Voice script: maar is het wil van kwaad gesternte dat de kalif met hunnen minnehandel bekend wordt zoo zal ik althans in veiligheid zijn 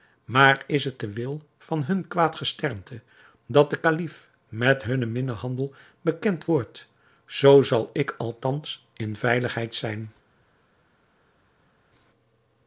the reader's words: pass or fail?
fail